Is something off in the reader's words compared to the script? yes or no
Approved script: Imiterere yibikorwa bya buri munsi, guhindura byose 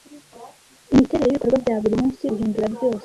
no